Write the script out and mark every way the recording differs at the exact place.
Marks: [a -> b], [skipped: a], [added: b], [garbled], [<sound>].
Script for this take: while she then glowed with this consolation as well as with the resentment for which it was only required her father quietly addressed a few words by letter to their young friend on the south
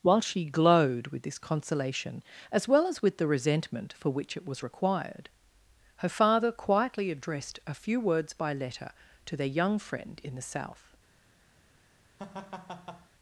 while she [skipped: then] glowed with this consolation as well as with the resentment for which it was [skipped: only] required her father quietly addressed a few words by letter to their young friend [on -> in] the south [laugh]